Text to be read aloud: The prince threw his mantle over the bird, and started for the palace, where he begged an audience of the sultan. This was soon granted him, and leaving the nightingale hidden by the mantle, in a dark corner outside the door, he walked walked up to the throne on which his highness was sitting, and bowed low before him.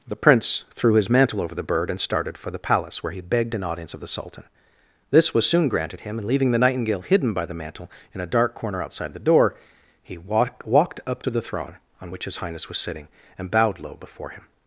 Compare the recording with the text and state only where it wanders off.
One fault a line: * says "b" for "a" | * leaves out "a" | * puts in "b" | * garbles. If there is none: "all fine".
all fine